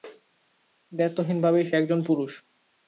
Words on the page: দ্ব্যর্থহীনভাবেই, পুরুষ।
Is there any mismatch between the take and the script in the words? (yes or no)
yes